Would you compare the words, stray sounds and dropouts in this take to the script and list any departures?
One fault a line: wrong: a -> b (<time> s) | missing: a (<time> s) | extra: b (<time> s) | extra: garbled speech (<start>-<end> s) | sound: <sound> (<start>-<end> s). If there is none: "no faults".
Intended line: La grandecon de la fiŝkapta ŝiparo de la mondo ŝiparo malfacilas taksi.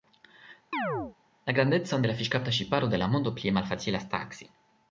sound: chirp (0.7-1.2 s)
wrong: ŝiparo -> plie (3.4 s)